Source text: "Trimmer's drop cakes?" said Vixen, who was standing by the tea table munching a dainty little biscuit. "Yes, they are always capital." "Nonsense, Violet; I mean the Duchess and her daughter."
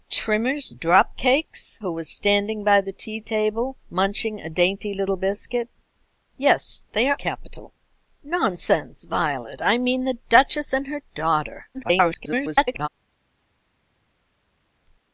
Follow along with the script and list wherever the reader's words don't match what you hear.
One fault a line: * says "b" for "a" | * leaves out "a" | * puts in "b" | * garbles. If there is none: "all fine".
* leaves out "said Vixen"
* leaves out "always"
* garbles